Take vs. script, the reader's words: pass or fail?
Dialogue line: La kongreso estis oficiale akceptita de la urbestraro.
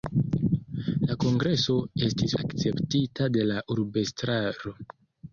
fail